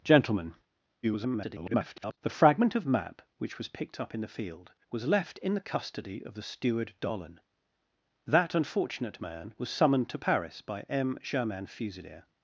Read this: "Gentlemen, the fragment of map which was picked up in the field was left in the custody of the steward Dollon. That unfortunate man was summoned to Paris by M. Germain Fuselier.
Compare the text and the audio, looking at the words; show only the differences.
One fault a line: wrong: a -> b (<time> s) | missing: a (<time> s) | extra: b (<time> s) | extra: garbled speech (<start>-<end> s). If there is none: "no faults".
extra: garbled speech (1.0-2.2 s)